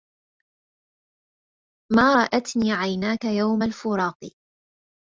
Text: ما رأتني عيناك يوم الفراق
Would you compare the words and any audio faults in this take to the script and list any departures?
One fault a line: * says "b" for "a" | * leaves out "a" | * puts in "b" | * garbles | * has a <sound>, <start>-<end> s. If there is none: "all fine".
all fine